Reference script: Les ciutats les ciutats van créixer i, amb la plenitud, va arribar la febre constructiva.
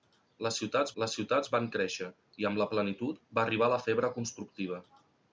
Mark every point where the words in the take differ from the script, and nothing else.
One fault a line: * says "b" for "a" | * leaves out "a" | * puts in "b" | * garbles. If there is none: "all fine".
all fine